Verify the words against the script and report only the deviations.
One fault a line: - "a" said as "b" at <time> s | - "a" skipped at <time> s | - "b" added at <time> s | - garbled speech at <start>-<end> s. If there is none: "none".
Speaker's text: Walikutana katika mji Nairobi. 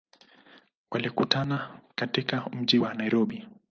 - "wa" added at 2.7 s